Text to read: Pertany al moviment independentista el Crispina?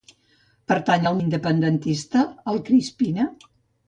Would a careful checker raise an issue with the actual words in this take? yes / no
yes